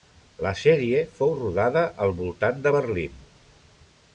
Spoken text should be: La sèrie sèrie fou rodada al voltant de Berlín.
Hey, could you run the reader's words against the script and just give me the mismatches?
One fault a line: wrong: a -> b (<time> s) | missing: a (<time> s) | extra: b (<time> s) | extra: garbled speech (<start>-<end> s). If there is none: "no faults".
missing: sèrie (1.0 s)